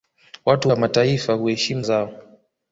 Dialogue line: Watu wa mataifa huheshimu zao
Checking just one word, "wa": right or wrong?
right